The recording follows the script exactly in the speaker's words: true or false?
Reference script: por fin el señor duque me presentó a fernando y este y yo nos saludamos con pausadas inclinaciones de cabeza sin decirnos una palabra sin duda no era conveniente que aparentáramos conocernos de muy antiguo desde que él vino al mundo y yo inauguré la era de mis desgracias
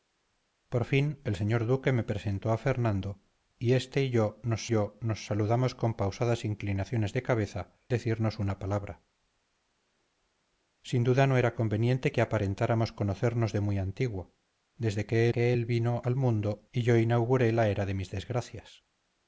false